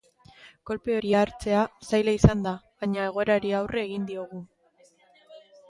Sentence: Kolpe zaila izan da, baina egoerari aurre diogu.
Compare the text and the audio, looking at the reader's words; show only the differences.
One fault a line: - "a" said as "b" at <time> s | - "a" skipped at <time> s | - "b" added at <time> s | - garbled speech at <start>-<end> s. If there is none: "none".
- "hori hartzea" added at 1.0 s
- "egin" added at 3.9 s